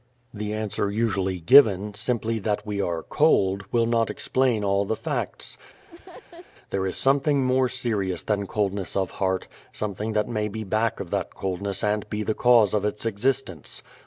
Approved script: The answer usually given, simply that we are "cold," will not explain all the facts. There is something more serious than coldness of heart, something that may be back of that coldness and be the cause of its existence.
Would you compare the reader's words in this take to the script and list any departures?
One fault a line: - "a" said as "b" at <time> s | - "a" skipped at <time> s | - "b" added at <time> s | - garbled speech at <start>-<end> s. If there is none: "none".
none